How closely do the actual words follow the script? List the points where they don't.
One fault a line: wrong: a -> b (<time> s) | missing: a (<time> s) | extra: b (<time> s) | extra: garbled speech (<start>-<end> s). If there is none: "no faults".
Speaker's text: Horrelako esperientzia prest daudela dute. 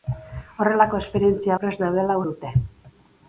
no faults